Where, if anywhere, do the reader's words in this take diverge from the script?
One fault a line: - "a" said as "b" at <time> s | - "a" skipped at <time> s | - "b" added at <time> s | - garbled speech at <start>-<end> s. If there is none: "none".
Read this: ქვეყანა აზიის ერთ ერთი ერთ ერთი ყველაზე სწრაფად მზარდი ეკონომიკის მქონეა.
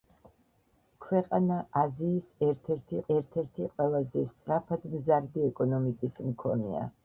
none